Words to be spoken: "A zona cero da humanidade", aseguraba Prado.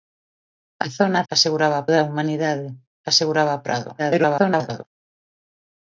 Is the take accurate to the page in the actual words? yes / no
no